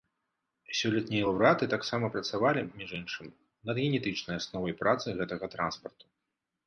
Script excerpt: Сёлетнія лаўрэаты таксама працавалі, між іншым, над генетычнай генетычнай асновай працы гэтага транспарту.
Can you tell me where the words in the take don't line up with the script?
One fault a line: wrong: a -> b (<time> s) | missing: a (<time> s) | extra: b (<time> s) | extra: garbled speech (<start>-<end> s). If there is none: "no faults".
missing: генетычнай (4.3 s)